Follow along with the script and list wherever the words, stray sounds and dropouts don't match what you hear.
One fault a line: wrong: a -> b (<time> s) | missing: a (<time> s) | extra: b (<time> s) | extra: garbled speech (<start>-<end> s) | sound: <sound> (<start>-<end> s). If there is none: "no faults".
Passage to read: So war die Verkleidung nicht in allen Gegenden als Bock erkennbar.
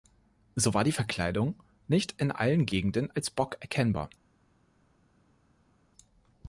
no faults